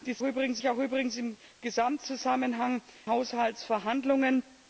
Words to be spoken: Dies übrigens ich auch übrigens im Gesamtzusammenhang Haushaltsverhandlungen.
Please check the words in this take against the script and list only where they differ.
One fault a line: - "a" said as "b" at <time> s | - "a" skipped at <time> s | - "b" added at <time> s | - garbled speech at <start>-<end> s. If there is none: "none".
none